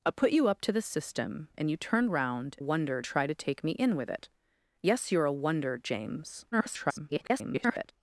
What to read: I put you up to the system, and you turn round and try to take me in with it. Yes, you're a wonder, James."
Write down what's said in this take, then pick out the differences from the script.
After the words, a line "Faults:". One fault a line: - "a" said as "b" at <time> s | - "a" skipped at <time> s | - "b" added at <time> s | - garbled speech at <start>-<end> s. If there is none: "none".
I put you up to the system, and you turn round wonder try to take me in with it. Yes, you're a wonder, James." [garbled]
Faults:
- "and" said as "wonder" at 2.6 s
- garbled speech at 6.5-7.9 s